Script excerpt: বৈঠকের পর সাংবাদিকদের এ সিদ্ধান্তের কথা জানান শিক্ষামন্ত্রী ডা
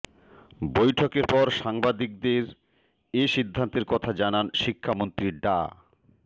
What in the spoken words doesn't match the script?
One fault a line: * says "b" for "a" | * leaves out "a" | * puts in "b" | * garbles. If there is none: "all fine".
all fine